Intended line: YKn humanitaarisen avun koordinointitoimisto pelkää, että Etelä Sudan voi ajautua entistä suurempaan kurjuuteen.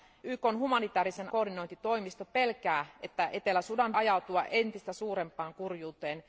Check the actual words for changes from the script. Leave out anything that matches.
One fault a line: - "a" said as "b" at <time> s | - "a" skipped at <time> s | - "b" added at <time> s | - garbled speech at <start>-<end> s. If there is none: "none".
- "avun" skipped at 1.3 s
- "voi" skipped at 4.0 s